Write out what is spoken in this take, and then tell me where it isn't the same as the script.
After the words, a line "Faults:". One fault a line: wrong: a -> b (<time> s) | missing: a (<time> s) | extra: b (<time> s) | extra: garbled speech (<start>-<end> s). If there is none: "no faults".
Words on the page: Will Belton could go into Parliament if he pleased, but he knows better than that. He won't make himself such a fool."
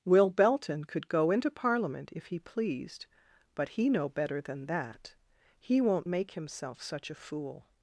Will Belton could go into Parliament if he pleased, but he know better than that. He won't make himself such a fool."
Faults:
wrong: knows -> know (3.9 s)